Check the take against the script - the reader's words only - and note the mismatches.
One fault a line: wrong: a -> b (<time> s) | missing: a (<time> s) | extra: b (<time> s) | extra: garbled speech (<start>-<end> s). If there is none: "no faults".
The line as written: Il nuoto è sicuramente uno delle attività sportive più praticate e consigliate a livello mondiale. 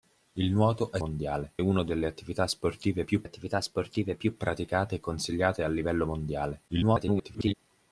wrong: sicuramente -> mondiale (1.0 s)
extra: attività sportive più (3.2 s)
extra: garbled speech (6.7-7.5 s)